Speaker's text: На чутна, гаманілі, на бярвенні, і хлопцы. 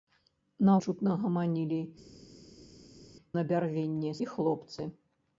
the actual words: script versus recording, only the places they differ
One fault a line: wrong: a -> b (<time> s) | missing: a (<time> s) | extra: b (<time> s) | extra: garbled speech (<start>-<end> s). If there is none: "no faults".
no faults